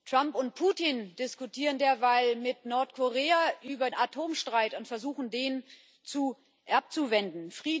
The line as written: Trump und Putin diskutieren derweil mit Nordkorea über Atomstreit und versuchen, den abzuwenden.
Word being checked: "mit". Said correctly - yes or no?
yes